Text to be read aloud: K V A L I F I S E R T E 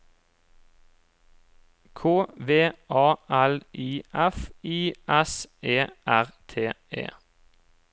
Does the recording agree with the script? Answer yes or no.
yes